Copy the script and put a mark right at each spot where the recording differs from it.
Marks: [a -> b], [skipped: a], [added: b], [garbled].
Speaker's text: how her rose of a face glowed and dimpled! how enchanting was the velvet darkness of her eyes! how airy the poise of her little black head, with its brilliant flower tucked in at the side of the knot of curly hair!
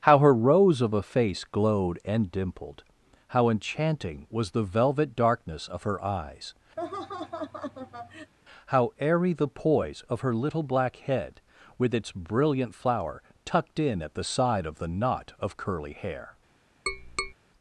how her rose of a face glowed and dimpled! how enchanting was the velvet darkness of her eyes! how airy the poise of her little black head, with its brilliant flower tucked in at the side of the knot of curly hair!